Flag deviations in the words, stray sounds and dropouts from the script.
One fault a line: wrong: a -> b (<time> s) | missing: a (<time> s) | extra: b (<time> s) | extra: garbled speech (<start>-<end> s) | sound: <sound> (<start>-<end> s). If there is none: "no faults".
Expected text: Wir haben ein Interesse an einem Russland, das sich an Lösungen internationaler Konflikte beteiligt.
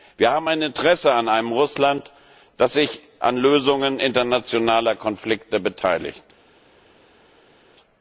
no faults